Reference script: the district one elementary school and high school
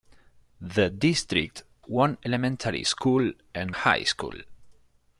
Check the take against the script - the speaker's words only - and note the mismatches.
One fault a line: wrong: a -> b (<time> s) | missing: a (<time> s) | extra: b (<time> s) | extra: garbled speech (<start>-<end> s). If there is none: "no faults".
no faults